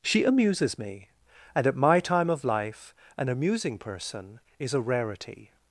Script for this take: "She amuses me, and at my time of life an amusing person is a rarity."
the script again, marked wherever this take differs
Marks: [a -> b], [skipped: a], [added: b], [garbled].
"She amuses me, and at my time of life an amusing person is a rarity."